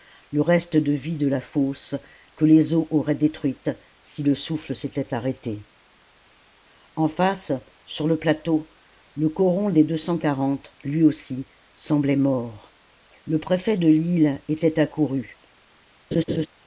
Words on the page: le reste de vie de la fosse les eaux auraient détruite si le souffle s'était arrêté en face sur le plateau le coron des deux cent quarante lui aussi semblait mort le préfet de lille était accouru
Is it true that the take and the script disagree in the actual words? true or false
true